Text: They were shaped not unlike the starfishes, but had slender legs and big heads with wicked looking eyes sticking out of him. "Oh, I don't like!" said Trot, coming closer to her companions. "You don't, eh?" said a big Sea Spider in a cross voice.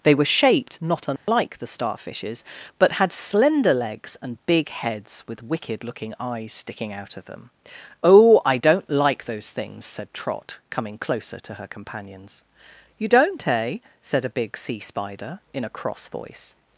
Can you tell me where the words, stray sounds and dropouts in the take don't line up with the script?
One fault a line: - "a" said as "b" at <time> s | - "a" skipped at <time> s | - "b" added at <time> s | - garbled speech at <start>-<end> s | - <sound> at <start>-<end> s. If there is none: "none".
- dropout at 1.2-1.3 s
- "him" said as "them" at 7.2 s
- "those things" added at 9.2 s